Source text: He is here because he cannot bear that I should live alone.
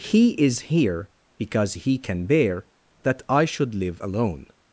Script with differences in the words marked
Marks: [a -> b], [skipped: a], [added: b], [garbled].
He is here because he [cannot -> can] bear that I should live alone.